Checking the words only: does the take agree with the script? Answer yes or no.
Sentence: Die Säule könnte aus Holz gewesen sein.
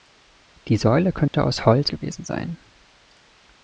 yes